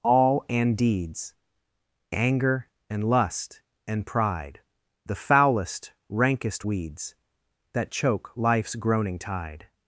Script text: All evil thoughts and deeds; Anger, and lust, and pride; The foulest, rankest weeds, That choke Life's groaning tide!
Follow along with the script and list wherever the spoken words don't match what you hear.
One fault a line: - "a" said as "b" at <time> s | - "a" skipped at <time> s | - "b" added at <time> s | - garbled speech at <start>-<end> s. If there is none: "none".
- "evil thoughts" skipped at 0.5 s